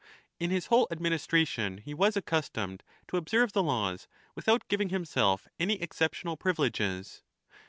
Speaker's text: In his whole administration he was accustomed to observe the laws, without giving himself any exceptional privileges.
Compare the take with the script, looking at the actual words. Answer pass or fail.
pass